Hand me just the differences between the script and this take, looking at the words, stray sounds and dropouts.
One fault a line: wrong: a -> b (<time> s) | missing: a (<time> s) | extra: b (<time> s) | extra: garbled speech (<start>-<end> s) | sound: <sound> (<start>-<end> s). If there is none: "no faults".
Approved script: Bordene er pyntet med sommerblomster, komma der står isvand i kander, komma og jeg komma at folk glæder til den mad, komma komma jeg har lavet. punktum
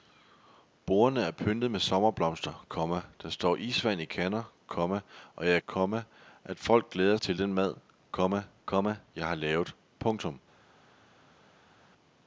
no faults